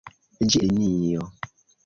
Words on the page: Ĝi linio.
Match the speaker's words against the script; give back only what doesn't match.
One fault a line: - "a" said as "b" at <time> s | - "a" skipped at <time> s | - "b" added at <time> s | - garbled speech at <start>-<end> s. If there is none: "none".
none